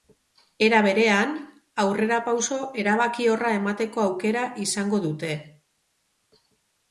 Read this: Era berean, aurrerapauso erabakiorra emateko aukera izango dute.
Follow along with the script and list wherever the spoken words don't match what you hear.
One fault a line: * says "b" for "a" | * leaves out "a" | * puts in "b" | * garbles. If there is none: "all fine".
all fine